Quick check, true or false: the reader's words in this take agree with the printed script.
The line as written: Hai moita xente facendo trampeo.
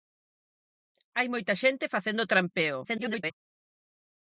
false